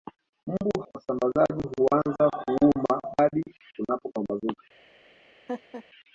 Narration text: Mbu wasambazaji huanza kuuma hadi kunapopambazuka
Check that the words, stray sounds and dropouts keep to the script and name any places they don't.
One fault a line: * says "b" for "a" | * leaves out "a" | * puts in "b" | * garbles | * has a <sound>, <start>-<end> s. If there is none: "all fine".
* has a laugh, 5.5-5.8 s